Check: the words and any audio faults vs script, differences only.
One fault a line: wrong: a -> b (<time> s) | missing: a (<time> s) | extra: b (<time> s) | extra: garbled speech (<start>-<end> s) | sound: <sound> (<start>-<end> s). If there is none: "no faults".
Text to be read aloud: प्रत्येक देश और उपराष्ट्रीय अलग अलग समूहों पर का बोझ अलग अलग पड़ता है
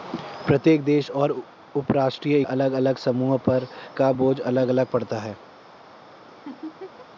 sound: laugh (6.3-7.1 s)